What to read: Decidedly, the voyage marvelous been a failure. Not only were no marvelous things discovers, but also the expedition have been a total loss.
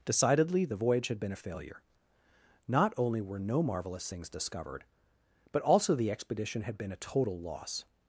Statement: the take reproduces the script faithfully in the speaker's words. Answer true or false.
false